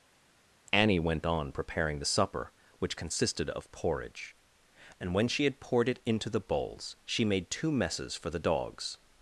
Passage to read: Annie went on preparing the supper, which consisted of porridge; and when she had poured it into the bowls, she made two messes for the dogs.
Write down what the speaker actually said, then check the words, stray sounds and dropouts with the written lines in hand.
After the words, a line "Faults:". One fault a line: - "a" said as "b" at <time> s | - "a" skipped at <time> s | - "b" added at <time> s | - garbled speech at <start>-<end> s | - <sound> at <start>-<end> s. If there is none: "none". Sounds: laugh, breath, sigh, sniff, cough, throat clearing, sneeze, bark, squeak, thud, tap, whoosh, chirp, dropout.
Annie went on preparing the supper, which consisted of porridge; and when she had poured it into the bowls, she made two messes for the dogs.
Faults:
none